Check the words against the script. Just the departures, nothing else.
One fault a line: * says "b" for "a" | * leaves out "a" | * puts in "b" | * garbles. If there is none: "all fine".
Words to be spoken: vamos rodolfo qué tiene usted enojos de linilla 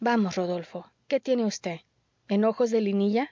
all fine